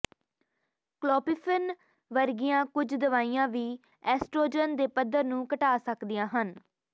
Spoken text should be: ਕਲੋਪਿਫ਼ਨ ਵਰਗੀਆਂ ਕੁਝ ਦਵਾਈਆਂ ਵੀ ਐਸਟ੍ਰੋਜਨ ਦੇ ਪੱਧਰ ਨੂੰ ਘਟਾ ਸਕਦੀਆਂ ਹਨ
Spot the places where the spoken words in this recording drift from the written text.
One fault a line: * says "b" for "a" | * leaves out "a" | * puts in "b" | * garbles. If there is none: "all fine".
all fine